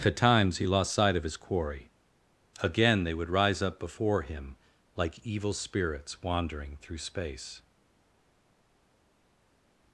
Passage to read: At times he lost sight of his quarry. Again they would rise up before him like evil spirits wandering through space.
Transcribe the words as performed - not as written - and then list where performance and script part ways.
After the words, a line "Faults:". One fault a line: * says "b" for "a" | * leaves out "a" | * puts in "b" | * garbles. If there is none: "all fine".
At times he lost sight of his quarry. Again they would rise up before him like evil spirits wandering through space.
Faults:
all fine